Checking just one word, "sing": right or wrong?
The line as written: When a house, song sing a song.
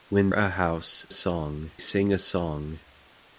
right